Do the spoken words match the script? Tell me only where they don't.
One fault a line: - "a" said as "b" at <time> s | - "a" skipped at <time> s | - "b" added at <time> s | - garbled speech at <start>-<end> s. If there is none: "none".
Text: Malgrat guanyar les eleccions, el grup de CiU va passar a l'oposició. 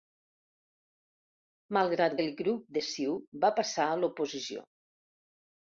- "guanyar les eleccions" skipped at 2.1 s